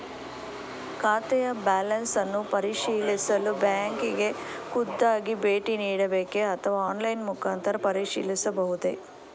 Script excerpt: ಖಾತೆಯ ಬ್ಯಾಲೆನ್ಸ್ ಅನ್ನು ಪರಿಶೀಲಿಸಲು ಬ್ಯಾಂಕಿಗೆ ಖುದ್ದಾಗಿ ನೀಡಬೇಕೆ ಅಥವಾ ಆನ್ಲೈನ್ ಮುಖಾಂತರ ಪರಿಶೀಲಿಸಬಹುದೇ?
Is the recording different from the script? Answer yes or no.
yes